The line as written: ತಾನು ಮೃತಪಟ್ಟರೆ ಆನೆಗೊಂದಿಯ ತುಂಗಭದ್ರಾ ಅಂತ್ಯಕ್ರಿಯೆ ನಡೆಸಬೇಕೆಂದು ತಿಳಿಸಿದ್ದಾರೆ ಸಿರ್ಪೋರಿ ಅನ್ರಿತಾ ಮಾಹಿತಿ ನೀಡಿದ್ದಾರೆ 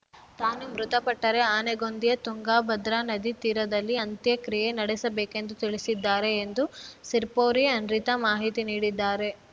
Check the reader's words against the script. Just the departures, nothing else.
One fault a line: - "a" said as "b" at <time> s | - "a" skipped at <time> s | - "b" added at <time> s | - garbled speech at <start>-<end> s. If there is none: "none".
- "ನದಿ ತೀರದಲ್ಲಿ" added at 3.1 s
- "ಎಂದು" added at 6.4 s